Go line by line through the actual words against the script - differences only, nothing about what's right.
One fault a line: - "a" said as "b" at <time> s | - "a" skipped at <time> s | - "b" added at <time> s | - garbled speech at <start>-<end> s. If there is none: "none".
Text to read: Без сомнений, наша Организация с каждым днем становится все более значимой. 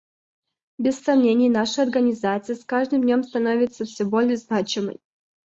none